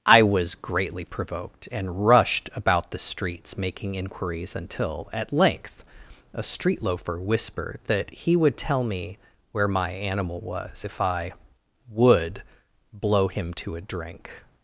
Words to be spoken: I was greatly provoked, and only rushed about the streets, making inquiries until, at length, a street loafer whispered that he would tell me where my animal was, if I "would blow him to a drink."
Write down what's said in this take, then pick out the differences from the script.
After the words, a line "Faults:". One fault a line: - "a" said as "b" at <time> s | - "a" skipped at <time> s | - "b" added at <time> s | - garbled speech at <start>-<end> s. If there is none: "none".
I was greatly provoked, and rushed about the streets, making inquiries until, at length, a street loafer whispered that he would tell me where my animal was, if I "would blow him to a drink."
Faults:
- "only" skipped at 2.1 s